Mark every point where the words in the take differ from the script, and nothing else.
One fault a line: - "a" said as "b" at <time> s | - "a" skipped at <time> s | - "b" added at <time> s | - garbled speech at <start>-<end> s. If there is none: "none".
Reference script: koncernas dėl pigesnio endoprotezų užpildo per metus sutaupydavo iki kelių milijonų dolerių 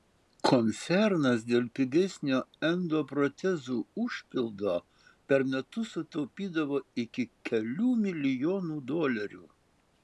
none